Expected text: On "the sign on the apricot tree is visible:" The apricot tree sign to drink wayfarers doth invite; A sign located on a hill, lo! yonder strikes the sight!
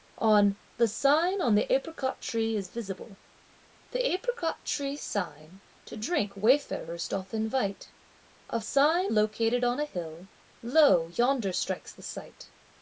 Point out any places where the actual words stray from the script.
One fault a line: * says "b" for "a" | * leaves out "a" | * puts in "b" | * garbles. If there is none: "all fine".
all fine